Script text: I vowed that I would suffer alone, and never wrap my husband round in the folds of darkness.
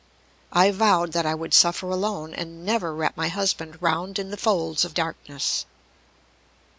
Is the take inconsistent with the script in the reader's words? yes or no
no